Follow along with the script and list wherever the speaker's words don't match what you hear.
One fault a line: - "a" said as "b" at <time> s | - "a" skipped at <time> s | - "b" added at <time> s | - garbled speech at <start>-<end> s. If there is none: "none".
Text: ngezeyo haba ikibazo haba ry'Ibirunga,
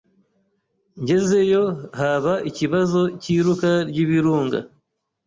- "haba" said as "cy'iruka" at 3.2 s